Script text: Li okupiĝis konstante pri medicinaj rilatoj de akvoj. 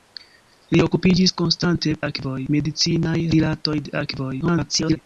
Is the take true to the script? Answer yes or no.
no